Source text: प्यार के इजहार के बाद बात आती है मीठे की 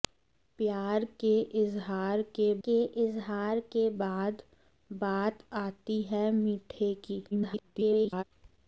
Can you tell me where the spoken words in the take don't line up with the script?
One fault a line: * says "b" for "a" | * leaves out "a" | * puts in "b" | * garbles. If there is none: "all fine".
* puts in "के इजहार के"
* garbles